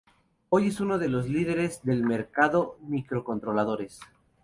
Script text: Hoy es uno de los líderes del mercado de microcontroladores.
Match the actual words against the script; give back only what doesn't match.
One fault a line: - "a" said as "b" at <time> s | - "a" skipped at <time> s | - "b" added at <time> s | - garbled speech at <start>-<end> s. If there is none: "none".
- "de" skipped at 2.8 s